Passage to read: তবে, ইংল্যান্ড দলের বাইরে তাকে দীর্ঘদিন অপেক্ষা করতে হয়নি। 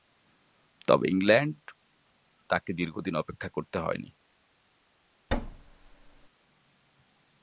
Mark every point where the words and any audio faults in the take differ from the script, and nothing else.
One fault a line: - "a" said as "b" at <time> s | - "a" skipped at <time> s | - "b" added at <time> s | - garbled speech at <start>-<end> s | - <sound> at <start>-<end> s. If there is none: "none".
- "দলের বাইরে" skipped at 1.6 s
- thud at 5.3-6.3 s